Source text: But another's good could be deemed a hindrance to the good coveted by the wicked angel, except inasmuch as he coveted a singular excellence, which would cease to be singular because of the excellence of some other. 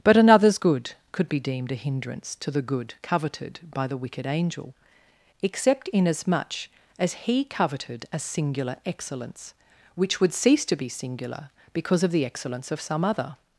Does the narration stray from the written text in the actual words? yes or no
no